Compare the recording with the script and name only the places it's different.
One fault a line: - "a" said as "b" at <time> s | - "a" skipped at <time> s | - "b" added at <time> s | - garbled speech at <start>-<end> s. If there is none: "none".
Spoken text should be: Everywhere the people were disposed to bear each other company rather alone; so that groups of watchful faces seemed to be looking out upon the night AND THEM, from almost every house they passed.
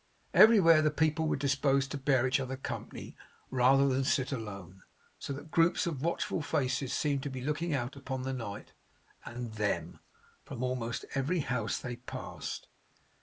- "than sit" added at 3.9 s